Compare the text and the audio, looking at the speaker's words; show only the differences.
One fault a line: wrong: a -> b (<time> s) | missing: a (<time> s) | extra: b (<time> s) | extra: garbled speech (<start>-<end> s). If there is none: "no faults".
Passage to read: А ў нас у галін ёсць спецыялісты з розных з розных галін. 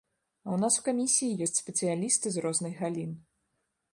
wrong: галін -> камісіі (0.9 s)
missing: з розных (2.7 s)